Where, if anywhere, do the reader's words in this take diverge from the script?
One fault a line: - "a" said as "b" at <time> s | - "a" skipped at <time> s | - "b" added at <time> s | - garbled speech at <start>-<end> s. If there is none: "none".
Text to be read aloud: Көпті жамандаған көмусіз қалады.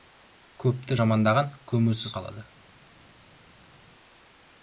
none